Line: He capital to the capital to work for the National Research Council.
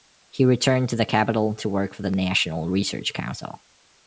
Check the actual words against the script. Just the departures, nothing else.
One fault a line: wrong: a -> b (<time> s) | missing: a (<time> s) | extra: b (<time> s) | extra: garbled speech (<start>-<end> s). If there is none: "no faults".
wrong: capital -> returned (0.5 s)